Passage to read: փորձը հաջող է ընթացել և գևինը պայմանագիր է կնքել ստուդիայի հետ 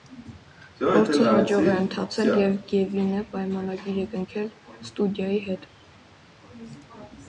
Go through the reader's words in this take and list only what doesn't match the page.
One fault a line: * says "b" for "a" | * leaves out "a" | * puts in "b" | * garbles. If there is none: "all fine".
all fine